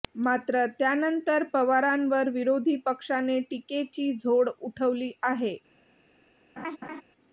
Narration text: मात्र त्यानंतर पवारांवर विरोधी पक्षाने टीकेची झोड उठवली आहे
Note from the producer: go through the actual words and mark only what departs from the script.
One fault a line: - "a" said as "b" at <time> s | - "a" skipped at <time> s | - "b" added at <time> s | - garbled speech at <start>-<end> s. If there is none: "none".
none